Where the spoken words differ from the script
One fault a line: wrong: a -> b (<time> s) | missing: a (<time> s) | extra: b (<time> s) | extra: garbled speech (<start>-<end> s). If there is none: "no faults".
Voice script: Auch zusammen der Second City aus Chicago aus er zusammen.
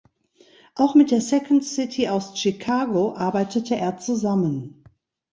wrong: zusammen -> mit (0.9 s)
wrong: aus -> arbeitete (3.1 s)